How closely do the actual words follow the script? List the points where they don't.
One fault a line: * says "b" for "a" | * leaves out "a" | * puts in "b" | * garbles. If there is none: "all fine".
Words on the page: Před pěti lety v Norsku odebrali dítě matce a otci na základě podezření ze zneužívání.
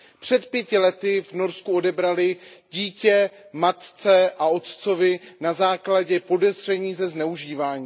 all fine